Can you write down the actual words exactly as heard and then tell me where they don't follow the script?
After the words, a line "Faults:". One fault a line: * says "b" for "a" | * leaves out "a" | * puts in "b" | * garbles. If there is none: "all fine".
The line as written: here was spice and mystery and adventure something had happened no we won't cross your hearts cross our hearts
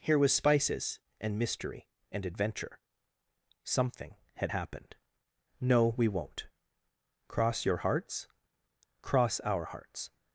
here was spices and mystery and adventure something had happened no we won't cross your hearts cross our hearts
Faults:
* says "spices" for "spice"